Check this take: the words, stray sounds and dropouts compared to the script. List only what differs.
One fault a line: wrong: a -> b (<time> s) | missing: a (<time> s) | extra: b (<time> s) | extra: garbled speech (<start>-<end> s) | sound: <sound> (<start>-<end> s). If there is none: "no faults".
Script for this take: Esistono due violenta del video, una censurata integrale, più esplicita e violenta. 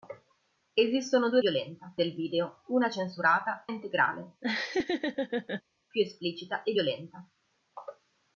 sound: laugh (4.4-5.6 s)